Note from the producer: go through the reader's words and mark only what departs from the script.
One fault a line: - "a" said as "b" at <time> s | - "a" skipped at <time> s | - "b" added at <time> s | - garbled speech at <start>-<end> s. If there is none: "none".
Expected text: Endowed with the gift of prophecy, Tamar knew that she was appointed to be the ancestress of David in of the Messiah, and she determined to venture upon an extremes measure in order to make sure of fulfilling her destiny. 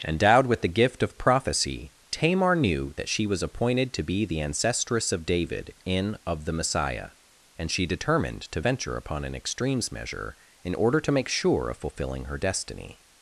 none